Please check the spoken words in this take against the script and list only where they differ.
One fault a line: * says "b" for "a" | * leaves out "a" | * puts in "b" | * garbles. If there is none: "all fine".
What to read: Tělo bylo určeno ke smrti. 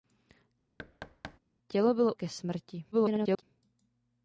* leaves out "určeno"
* garbles